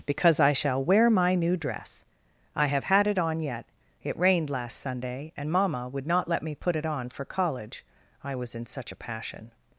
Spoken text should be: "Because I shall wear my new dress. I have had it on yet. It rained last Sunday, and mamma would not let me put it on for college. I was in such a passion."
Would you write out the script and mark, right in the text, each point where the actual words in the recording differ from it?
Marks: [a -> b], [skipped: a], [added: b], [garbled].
"Because I shall wear my new dress. I have had it on yet. It rained last Sunday, and mamma would not let me put it on for college. I was in such a passion."